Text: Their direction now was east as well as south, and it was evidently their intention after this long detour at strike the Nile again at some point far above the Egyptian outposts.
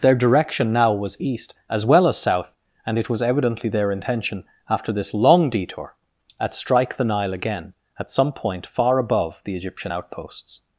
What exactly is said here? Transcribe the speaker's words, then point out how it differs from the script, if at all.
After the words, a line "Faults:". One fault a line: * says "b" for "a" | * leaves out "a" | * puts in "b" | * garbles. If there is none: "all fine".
Their direction now was east as well as south, and it was evidently their intention after this long detour at strike the Nile again at some point far above the Egyptian outposts.
Faults:
all fine